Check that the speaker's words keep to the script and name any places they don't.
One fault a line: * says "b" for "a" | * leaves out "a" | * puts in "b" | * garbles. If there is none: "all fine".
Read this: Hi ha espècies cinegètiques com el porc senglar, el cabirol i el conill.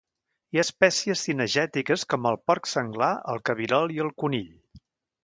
all fine